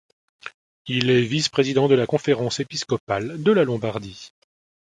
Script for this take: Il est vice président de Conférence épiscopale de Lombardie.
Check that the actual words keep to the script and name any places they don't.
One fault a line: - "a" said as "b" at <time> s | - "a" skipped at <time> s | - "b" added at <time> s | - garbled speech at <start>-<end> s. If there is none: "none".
- "la" added at 1.9 s
- "la" added at 3.5 s